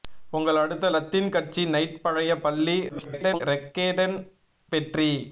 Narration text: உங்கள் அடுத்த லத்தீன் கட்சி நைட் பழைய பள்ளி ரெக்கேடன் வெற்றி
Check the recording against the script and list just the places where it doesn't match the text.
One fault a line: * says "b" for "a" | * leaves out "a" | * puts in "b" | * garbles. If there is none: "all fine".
* garbles